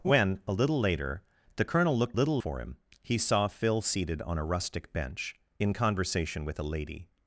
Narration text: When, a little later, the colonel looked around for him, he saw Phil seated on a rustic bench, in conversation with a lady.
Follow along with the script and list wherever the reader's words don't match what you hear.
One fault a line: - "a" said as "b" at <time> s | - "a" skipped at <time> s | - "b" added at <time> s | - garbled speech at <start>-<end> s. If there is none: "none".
- "around" said as "little" at 2.1 s